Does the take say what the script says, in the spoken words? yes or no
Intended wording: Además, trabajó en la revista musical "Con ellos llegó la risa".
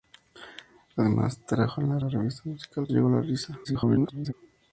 no